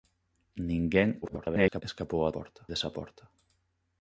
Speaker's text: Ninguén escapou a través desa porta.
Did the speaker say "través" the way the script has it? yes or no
no